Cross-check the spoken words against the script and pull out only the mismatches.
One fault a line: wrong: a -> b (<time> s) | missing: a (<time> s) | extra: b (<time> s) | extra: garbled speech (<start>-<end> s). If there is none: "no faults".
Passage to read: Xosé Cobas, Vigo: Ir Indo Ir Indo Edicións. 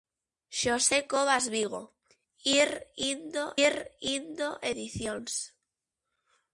no faults